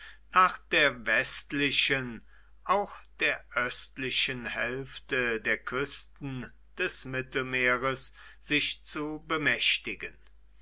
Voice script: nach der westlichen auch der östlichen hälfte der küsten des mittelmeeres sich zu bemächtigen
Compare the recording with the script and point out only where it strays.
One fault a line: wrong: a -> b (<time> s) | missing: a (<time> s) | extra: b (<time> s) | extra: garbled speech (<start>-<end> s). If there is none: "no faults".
no faults